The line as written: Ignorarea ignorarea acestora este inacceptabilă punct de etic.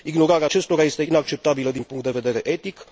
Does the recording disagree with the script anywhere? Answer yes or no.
yes